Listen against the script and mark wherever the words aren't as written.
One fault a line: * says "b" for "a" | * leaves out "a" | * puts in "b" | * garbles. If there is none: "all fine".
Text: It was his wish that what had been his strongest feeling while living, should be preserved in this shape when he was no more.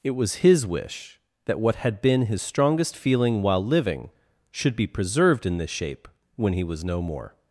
all fine